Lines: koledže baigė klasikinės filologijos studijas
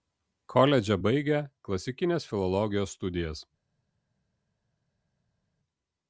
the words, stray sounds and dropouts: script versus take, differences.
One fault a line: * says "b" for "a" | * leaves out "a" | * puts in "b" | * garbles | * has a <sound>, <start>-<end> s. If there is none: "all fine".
all fine